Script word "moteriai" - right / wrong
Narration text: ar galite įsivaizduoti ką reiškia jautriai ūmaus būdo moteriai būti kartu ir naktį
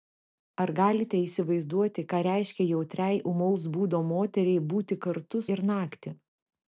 right